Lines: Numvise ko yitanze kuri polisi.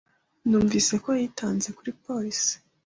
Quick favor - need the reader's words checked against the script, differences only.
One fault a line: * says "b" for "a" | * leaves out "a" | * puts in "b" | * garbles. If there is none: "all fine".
all fine